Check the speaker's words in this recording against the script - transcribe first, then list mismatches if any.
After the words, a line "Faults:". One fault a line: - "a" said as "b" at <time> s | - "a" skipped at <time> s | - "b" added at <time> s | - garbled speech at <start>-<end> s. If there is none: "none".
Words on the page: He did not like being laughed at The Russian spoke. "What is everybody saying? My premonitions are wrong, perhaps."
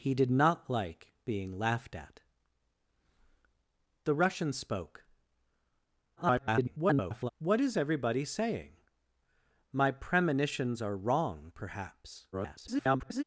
He did not like being laughed at The Russian spoke. [garbled] "What is everybody saying? My premonitions are wrong, perhaps." [garbled]
Faults:
- garbled speech at 6.2-7.3 s
- garbled speech at 12.3-13.2 s